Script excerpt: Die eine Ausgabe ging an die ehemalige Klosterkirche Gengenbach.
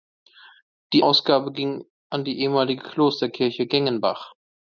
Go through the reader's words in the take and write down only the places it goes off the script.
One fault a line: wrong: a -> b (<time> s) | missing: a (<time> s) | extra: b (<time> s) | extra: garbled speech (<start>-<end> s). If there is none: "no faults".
missing: eine (1.1 s)